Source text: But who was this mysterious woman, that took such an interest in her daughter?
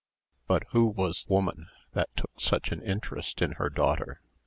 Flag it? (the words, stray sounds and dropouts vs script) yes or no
yes